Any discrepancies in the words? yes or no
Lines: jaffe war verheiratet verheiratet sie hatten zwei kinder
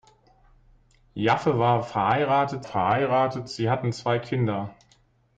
no